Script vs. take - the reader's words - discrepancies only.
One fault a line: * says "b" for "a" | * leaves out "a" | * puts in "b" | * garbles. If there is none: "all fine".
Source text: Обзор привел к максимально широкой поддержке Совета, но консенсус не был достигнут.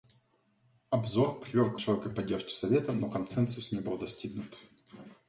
* leaves out "максимально"